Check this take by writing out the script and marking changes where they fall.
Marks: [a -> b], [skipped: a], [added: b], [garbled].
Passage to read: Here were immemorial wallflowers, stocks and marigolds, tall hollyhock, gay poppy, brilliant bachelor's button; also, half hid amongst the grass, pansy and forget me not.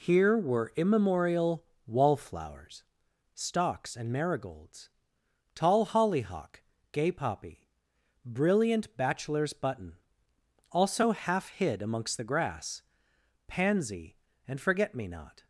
Here were immemorial wallflowers, stocks and marigolds, tall hollyhock, gay poppy, brilliant bachelor's button; also, half hid amongst the grass, pansy and forget me not.